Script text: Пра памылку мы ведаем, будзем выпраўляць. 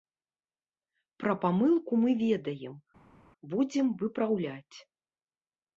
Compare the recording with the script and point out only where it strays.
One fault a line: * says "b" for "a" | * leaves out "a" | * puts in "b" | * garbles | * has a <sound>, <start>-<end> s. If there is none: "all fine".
all fine